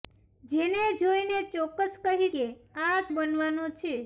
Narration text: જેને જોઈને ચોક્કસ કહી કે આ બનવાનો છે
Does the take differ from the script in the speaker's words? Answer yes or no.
no